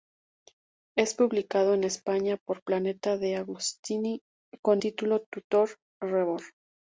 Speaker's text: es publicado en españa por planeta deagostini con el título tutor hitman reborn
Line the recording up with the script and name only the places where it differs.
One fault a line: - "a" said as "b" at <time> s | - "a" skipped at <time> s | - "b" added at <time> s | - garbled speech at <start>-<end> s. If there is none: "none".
- "el" skipped at 4.8 s
- "hitman" skipped at 5.8 s